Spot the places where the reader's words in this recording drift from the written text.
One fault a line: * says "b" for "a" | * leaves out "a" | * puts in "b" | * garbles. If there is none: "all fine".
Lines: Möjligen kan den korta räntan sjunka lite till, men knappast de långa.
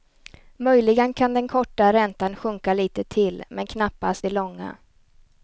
all fine